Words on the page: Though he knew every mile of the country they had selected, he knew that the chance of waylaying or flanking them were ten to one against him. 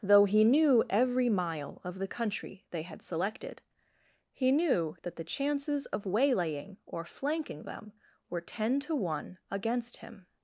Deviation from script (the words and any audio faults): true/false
true